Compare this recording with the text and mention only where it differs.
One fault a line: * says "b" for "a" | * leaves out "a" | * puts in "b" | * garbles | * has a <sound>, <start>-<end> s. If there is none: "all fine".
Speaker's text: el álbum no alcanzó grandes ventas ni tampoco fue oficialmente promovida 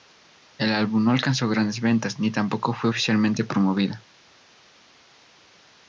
all fine